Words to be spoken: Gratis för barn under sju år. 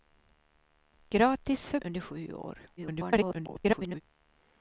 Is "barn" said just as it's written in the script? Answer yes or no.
no